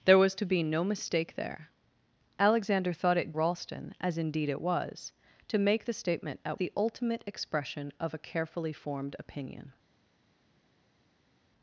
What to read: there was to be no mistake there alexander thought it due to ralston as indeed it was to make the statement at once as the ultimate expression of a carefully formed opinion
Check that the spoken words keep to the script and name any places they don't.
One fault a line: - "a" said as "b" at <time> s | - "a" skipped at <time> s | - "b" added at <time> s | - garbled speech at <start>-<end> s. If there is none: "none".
- "due to" skipped at 3.4 s
- "once as" skipped at 6.6 s